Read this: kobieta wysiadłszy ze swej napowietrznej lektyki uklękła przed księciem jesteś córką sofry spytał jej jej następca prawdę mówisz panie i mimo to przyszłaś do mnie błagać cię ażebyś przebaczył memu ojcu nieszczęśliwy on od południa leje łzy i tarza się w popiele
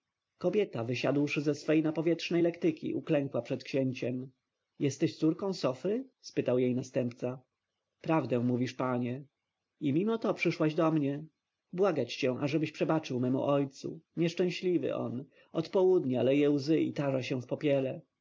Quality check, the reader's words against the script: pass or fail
fail